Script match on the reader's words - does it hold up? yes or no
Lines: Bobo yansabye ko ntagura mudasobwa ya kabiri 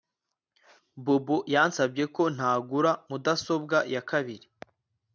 yes